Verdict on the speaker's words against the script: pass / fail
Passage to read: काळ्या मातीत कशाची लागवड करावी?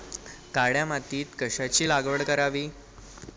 pass